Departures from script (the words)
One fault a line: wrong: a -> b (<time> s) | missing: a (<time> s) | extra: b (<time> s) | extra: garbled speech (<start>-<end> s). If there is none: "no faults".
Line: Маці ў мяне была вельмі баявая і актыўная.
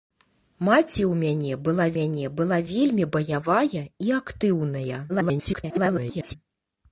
extra: мяне была (2.0 s)
extra: garbled speech (5.1-6.3 s)